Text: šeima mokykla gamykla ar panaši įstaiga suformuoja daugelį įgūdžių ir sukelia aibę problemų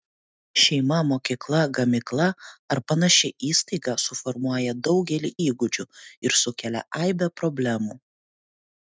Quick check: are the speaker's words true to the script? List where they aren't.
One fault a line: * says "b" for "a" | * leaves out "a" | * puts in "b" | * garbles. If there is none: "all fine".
all fine